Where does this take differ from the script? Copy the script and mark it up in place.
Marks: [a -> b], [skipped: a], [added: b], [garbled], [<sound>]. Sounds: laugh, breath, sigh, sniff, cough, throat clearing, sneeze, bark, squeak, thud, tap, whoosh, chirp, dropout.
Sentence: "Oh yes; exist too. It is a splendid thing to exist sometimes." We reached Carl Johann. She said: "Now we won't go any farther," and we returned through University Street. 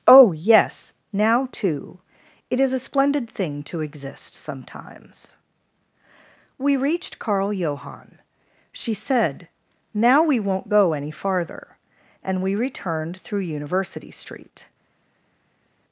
"Oh yes; [exist -> now] too. It is a splendid thing to exist sometimes." We reached Carl Johann. She said: "Now we won't go any farther," and we returned through University Street.